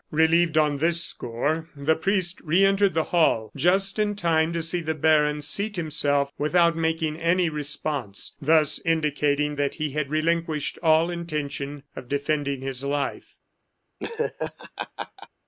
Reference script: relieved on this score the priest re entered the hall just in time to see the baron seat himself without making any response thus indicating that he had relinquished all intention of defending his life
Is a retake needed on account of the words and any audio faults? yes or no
yes